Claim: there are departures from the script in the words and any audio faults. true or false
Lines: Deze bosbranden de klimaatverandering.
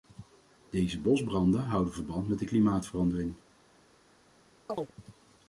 true